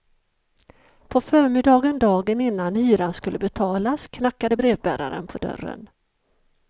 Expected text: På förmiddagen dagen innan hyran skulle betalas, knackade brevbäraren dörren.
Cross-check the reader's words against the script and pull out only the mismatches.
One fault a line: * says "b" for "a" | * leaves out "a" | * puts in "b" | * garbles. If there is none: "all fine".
* puts in "på"